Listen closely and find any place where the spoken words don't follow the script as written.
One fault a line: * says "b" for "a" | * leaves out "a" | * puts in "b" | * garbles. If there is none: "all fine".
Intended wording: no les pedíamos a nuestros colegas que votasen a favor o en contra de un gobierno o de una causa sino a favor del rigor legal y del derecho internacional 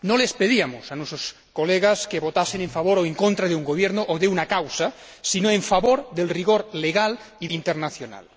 * leaves out "del derecho"